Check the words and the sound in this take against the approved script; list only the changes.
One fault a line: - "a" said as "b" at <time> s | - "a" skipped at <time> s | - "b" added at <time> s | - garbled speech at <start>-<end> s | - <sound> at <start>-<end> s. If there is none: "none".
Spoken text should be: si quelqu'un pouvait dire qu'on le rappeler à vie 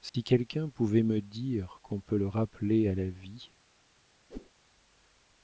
- dropout at 0.1-0.1 s
- "me" added at 1.0 s
- "peut" added at 2.0 s
- "la" added at 2.9 s
- whoosh at 4.3-4.5 s